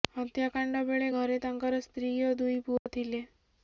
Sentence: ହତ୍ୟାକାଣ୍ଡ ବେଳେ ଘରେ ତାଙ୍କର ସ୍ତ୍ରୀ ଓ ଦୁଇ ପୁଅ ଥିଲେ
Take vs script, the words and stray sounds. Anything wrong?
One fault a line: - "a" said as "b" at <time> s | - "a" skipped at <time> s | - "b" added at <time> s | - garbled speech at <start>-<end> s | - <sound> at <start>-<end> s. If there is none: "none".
- dropout at 2.8-2.9 s